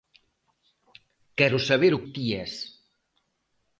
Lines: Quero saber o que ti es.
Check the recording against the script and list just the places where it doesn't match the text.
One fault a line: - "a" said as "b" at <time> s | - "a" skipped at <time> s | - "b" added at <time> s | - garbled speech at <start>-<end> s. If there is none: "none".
- "que" skipped at 2.0 s